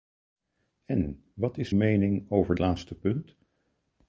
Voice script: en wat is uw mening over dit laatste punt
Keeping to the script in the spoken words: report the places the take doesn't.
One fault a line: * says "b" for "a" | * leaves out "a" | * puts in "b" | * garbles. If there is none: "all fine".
* leaves out "uw"
* leaves out "dit"